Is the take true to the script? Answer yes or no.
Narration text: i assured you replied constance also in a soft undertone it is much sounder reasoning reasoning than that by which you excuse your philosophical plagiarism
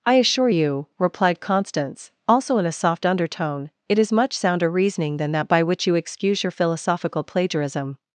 no